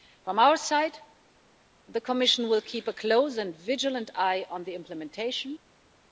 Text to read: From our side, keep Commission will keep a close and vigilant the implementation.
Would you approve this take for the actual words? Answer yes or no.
no